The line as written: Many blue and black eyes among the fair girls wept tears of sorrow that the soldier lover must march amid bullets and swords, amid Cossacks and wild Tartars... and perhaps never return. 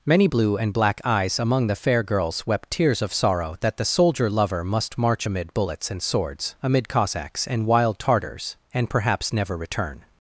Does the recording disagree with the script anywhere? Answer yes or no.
no